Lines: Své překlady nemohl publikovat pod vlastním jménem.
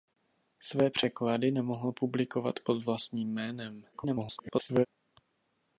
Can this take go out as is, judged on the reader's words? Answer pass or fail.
fail